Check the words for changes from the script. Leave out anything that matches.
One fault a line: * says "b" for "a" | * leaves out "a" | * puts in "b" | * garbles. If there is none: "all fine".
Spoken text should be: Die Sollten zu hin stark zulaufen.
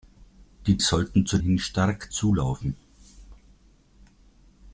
all fine